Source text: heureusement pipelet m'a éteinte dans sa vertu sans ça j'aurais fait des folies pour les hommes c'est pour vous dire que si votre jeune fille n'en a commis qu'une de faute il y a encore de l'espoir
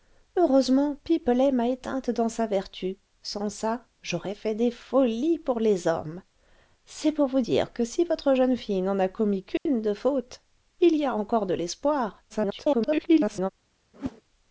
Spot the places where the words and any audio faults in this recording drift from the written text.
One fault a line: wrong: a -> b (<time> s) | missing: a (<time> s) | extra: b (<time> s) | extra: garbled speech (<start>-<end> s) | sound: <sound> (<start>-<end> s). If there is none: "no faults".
sound: dropout (9.6-9.7 s)
extra: garbled speech (12.3-13.5 s)
sound: whoosh (13.9-14.2 s)